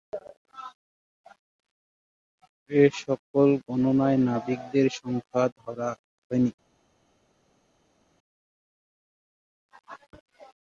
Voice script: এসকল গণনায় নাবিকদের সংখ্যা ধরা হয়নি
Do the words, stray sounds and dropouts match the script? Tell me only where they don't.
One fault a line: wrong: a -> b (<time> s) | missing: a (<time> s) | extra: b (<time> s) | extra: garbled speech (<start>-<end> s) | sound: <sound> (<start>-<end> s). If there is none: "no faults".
no faults